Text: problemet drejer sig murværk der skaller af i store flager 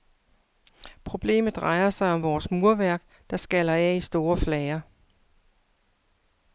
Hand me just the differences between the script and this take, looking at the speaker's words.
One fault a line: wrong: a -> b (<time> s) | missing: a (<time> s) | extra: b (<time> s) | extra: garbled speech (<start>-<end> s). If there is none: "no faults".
extra: om vores (2.1 s)